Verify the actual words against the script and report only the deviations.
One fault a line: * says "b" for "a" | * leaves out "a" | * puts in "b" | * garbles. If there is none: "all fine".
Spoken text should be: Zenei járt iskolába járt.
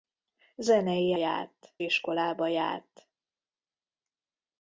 all fine